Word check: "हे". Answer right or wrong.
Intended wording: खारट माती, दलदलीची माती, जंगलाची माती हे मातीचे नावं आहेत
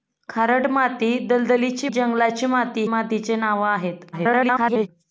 wrong